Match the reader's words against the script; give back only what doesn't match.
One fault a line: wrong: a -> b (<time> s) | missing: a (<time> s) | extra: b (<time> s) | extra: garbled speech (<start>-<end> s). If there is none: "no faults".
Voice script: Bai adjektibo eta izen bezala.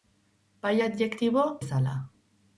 missing: eta izen (1.4 s)